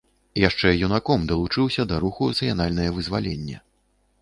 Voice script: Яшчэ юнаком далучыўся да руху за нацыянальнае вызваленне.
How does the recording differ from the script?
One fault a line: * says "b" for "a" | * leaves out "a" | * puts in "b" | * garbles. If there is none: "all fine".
* leaves out "за"